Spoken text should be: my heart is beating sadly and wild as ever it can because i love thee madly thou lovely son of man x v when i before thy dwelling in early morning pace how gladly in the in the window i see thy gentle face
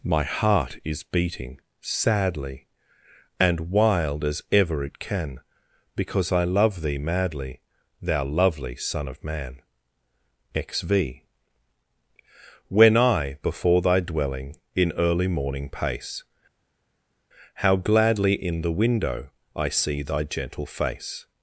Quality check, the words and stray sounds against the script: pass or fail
fail